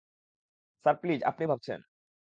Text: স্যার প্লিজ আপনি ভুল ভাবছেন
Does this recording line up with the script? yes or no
no